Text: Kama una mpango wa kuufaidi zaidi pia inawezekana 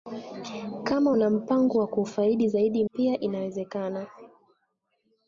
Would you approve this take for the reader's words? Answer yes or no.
yes